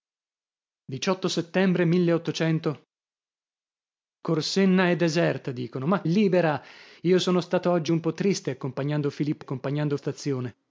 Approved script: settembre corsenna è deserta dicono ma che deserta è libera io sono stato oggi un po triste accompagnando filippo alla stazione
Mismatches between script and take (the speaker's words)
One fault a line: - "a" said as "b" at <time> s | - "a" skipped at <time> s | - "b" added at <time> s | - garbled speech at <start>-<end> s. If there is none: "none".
- "che deserta è" skipped at 6.0 s
- "alla" said as "accompagnando" at 9.4 s